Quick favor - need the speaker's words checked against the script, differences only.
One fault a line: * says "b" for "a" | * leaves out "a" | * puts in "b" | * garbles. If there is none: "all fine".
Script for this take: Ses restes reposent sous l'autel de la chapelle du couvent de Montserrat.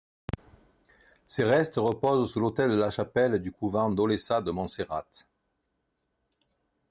* puts in "d'Olesa"